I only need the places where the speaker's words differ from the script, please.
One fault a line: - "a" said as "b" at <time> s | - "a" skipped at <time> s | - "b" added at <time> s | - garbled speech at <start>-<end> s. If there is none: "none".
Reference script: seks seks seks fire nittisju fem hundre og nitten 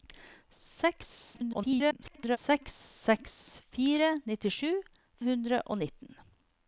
- garbled speech at 1.3-2.4 s
- "fem" skipped at 4.7 s